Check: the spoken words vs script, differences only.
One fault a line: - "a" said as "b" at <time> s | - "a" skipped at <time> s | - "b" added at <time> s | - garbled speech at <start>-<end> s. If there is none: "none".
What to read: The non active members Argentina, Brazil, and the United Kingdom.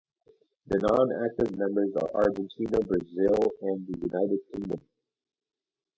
- "are" added at 2.0 s